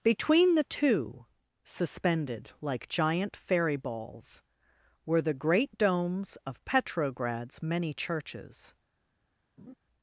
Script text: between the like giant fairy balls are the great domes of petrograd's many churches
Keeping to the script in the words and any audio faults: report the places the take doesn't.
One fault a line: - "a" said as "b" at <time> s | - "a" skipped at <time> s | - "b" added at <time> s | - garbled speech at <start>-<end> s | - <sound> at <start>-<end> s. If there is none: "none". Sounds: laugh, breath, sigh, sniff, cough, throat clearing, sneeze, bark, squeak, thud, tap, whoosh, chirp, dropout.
- "two suspended" added at 0.6 s
- "are" said as "were" at 5.0 s
- laugh at 9.6-9.8 s